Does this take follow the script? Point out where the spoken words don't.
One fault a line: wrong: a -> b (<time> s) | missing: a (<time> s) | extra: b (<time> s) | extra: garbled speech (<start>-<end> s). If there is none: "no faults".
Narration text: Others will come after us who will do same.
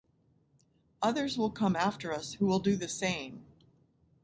extra: the (2.8 s)